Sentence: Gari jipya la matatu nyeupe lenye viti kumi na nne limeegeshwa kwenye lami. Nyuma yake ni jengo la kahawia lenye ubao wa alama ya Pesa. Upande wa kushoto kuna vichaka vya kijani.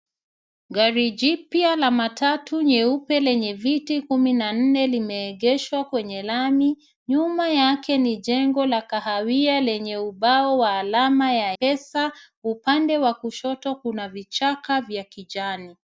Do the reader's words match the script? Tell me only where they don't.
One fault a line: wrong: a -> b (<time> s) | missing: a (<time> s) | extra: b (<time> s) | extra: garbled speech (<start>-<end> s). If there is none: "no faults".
no faults